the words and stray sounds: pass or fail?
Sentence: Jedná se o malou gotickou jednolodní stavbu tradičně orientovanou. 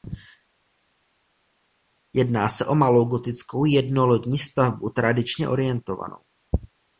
pass